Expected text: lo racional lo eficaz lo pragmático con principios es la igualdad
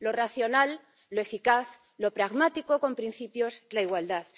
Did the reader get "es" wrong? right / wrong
wrong